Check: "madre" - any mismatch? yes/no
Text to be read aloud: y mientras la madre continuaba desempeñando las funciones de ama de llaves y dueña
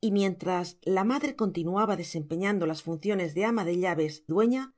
no